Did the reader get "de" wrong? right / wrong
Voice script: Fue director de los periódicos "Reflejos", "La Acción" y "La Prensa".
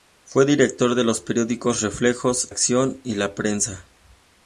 right